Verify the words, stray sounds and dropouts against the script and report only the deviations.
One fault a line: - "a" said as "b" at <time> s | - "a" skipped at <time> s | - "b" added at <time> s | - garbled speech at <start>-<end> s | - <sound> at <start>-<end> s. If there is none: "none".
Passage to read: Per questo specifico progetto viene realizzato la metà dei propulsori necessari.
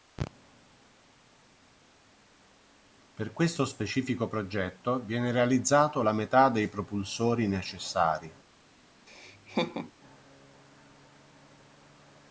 - laugh at 9.1-9.9 s